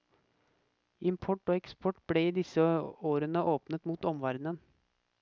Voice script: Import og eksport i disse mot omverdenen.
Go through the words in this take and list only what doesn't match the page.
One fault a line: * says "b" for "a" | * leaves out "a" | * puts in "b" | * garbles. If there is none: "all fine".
* puts in "ble"
* puts in "årene åpnet"